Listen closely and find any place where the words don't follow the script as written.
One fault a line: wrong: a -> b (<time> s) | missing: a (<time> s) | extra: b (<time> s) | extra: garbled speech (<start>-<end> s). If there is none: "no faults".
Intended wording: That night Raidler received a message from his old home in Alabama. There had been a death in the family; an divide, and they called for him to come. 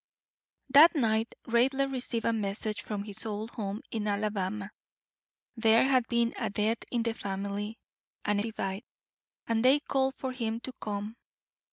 no faults